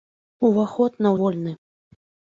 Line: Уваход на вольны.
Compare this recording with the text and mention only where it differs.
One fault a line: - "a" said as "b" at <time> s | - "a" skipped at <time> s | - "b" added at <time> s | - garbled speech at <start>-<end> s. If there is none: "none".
none